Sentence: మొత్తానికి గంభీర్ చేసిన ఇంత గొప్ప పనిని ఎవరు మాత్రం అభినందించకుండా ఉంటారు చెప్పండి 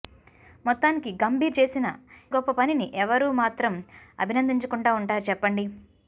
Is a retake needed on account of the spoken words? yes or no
yes